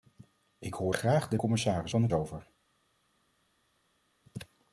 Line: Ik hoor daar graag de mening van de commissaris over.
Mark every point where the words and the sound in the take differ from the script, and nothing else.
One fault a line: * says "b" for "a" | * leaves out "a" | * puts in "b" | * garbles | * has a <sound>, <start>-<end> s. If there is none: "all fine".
* leaves out "daar"
* says "commissaris" for "mening"
* leaves out "commissaris"